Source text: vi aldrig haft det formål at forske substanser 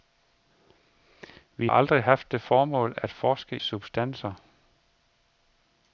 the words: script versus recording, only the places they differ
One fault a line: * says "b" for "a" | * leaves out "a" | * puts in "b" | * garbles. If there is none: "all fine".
all fine